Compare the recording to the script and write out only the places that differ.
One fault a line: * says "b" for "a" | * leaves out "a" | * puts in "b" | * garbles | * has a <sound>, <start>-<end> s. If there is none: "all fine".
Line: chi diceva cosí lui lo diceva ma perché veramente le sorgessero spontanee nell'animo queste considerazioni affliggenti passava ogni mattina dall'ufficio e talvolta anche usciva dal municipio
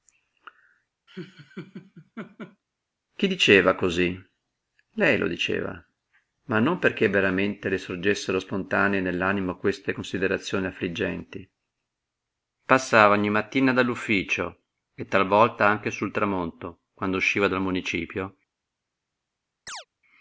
* has a laugh, 1.1-2.6 s
* says "lei" for "lui"
* puts in "non"
* puts in "sul tramonto quando"
* has a chirp, 19.7-19.9 s